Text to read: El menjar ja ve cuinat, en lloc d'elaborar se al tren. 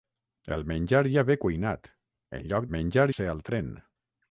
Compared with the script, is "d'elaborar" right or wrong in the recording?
wrong